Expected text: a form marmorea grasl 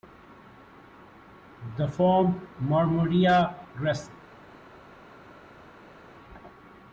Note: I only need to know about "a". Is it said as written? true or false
false